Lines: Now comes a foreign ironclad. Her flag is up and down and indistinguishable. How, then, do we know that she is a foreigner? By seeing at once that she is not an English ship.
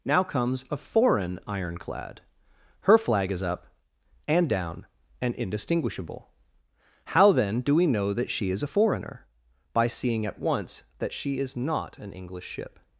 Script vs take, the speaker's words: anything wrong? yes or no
no